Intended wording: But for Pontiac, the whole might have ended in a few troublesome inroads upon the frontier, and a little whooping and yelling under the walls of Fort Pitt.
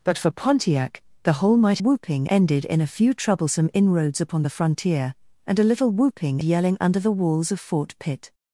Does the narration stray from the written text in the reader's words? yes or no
yes